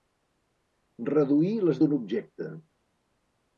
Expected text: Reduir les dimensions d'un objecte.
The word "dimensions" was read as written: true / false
false